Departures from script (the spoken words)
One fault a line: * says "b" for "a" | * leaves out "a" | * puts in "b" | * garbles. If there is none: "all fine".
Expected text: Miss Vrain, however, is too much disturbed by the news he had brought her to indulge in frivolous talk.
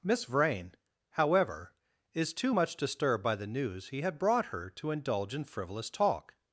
all fine